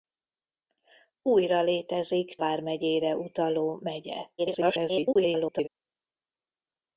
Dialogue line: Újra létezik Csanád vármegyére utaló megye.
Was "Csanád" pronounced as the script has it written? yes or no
no